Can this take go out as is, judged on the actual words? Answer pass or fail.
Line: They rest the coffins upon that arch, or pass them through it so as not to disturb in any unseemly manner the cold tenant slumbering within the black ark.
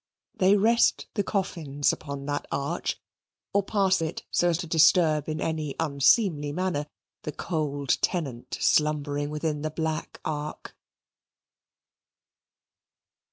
fail